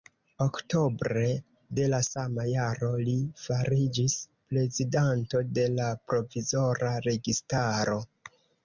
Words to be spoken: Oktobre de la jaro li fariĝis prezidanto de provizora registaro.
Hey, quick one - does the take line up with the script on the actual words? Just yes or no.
no